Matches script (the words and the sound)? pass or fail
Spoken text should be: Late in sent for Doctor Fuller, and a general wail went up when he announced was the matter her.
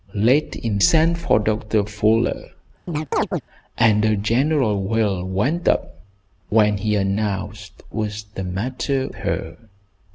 fail